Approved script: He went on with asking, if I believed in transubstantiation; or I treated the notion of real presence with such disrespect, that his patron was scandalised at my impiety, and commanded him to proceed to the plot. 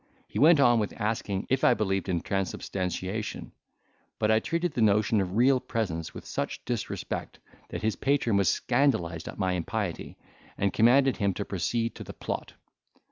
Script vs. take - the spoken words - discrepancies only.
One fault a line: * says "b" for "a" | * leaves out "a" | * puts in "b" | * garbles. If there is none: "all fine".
* says "but" for "or"